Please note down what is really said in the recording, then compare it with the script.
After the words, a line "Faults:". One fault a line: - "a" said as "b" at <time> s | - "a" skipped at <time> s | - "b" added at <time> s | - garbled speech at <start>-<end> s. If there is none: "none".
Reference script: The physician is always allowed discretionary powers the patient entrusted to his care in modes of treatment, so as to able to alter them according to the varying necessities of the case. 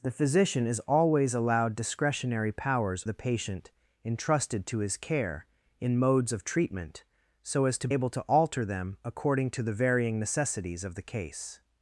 The physician is always allowed discretionary powers the patient entrusted to his care in modes of treatment, so as to able to alter them according to the varying necessities of the case.
Faults:
none